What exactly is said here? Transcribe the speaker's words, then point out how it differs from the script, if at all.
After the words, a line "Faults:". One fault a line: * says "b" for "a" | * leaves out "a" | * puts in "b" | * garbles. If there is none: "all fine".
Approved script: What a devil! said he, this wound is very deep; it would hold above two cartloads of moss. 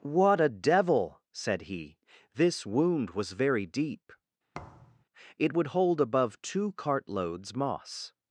What a devil! said he, this wound was very deep; it would hold above two cartloads moss.
Faults:
* says "was" for "is"
* leaves out "of"